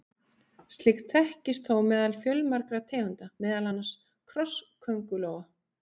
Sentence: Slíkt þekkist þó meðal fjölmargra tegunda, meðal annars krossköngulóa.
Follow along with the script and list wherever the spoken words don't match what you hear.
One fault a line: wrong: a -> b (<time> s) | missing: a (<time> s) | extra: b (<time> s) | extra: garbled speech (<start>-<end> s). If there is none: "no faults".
no faults